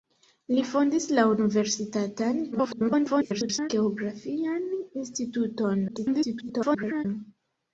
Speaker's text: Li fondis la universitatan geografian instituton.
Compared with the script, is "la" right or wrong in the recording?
right